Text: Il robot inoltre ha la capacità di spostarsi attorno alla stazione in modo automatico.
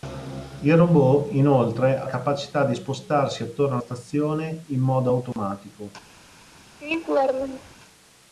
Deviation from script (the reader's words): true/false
true